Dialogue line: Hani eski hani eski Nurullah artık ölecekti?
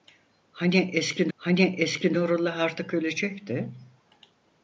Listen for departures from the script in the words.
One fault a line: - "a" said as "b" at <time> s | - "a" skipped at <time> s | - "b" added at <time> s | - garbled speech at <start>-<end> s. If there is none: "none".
none